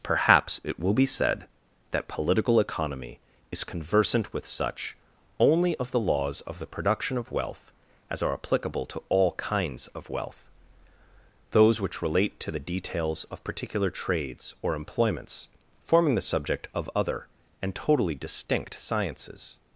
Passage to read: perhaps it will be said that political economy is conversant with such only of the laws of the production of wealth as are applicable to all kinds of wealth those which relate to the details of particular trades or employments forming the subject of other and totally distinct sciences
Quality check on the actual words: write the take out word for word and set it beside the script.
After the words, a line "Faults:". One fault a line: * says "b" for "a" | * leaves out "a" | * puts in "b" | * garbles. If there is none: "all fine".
perhaps it will be said that political economy is conversant with such only of the laws of the production of wealth as are applicable to all kinds of wealth those which relate to the details of particular trades or employments forming the subject of other and totally distinct sciences
Faults:
all fine